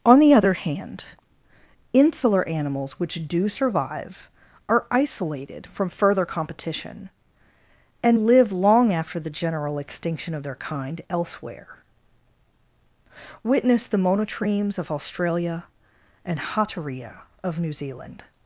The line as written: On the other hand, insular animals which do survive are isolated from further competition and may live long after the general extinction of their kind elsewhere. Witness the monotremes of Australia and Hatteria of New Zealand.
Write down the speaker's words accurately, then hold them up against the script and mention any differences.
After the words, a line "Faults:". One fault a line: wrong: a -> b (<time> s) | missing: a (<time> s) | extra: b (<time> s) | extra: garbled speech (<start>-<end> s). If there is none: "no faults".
On the other hand, insular animals which do survive are isolated from further competition and live long after the general extinction of their kind elsewhere. Witness the monotremes of Australia and Hatteria of New Zealand.
Faults:
missing: may (8.2 s)